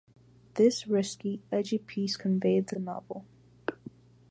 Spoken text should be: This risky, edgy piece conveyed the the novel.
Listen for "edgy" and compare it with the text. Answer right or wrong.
right